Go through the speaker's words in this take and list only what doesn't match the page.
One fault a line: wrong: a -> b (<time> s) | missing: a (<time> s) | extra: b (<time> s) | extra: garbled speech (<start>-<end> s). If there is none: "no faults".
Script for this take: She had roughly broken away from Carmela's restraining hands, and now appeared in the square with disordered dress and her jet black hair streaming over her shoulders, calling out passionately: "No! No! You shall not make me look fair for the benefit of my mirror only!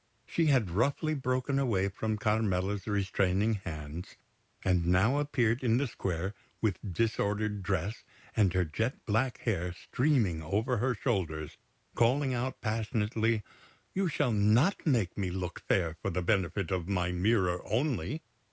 missing: No No (13.4 s)